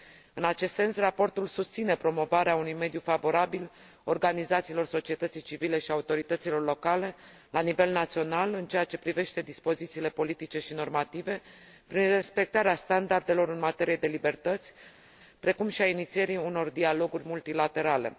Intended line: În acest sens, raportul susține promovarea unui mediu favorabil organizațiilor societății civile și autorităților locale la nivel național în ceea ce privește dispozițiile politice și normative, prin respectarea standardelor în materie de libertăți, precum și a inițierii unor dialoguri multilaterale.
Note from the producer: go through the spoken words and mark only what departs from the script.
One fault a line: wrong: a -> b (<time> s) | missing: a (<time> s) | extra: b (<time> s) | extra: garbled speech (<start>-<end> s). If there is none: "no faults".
no faults